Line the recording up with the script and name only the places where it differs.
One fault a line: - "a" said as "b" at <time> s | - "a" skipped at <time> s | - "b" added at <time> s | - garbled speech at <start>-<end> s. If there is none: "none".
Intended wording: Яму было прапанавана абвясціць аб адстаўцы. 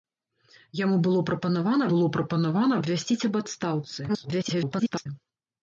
- "было прапанавана" added at 1.9 s
- garbled speech at 4.1-5.1 s